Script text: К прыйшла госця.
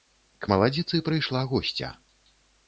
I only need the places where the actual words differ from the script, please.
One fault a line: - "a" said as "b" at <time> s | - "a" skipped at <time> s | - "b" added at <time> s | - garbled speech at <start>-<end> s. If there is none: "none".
- "маладзіцы" added at 0.5 s